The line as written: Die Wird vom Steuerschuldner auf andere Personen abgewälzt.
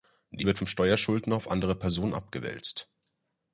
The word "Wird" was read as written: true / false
true